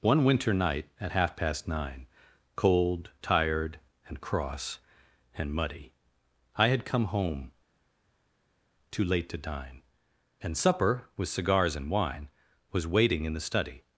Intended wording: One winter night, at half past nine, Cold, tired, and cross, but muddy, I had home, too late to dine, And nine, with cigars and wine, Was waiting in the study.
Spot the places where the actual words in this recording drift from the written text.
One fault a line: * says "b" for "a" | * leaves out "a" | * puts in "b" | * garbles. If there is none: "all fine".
* says "and" for "but"
* puts in "come"
* says "supper" for "nine"